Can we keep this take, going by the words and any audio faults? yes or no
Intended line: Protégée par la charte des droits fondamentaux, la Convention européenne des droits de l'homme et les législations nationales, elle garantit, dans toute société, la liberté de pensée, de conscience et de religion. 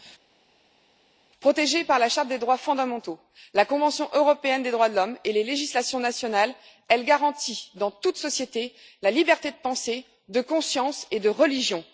yes